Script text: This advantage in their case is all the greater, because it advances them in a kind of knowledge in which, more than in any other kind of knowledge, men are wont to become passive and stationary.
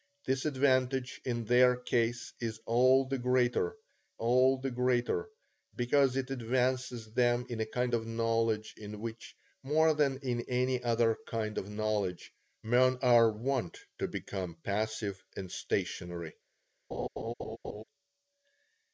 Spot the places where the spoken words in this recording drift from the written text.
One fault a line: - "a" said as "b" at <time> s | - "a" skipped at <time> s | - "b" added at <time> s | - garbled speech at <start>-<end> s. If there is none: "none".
- "all the greater" added at 4.2 s